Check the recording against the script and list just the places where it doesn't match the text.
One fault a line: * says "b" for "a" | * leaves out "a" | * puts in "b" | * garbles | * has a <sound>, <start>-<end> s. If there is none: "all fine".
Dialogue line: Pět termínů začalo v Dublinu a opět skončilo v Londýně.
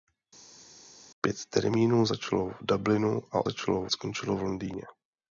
* says "začalo" for "opět"